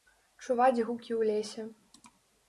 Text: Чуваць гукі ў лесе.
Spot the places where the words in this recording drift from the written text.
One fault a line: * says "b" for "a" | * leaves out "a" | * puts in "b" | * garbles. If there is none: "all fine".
all fine